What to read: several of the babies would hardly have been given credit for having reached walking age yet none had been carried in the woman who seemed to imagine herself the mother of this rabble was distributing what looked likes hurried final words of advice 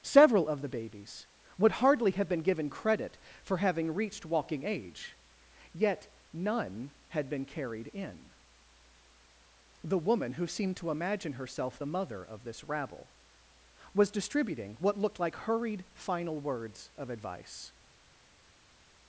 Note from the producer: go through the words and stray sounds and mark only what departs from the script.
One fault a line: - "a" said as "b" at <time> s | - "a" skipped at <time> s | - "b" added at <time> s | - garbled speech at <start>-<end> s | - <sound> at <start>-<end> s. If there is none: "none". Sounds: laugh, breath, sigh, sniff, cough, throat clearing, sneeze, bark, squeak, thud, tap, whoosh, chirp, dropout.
- "likes" said as "like" at 15.2 s